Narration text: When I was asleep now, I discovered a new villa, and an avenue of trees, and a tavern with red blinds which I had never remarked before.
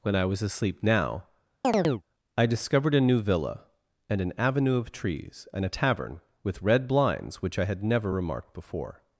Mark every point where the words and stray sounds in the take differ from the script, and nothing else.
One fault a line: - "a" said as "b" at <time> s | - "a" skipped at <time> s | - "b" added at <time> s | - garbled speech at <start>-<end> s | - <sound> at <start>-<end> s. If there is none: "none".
- chirp at 1.6-2.0 s